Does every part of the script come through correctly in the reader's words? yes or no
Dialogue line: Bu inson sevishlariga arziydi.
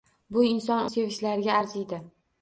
yes